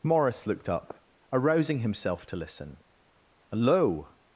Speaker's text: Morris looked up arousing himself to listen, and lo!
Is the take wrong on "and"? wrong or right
wrong